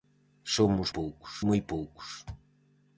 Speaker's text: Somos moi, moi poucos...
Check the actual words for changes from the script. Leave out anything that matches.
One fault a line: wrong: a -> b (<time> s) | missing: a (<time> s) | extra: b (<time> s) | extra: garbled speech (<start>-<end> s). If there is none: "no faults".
wrong: moi -> poucos (1.0 s)